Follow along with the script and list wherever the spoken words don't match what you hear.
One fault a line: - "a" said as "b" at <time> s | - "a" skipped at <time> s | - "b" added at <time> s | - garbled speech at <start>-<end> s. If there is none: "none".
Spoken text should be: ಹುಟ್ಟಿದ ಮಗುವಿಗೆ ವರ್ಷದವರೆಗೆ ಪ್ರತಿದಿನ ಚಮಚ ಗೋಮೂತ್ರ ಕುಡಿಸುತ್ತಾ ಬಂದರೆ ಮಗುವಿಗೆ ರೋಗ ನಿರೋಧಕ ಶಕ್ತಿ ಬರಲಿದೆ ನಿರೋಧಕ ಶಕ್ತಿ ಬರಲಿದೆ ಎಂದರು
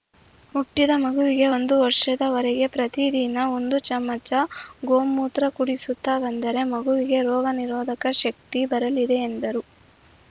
- "ಒಂದು" added at 1.5 s
- "ಒಂದು" added at 3.5 s
- "ನಿರೋಧಕ ಶಕ್ತಿ ಬರಲಿದೆ" skipped at 9.2 s